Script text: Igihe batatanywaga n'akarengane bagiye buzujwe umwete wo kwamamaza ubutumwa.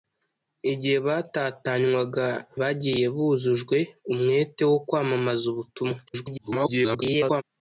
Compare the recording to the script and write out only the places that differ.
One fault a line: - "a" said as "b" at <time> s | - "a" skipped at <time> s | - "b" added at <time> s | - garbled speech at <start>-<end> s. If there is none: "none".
- "n'akarengane" skipped at 2.3 s
- garbled speech at 6.1-7.4 s